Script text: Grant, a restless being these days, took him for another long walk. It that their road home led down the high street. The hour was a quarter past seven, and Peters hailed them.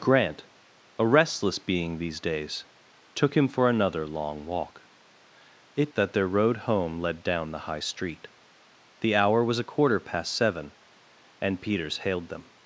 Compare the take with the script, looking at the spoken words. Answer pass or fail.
pass